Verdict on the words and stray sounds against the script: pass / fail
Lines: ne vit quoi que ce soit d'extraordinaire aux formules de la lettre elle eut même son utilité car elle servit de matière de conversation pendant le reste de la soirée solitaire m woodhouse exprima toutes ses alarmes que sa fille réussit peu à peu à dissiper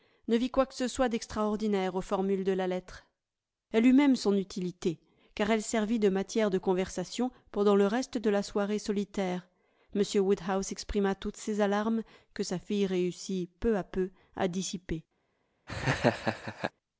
fail